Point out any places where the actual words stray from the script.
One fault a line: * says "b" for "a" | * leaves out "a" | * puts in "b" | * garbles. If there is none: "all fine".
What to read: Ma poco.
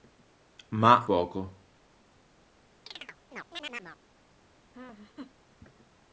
all fine